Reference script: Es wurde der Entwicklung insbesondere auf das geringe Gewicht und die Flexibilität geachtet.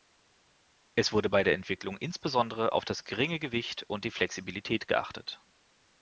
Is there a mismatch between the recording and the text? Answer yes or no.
yes